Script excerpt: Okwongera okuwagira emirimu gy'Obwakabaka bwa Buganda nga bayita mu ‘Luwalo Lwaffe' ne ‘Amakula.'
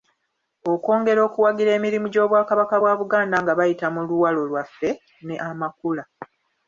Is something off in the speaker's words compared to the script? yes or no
no